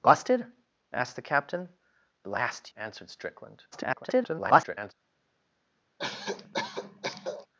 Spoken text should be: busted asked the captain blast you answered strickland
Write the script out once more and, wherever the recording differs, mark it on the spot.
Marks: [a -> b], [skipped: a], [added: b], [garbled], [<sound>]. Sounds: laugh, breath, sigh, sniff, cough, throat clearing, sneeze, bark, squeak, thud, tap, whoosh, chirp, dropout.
busted asked the captain blast [skipped: you] answered strickland [garbled] [cough]